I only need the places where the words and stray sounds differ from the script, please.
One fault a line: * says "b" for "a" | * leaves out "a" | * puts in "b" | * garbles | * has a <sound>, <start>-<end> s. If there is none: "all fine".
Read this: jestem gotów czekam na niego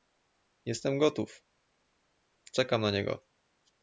all fine